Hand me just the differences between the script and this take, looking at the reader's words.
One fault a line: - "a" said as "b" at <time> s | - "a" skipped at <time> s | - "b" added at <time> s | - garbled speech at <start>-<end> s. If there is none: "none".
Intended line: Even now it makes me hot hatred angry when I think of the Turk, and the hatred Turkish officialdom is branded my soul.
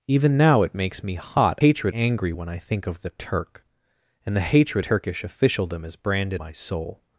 none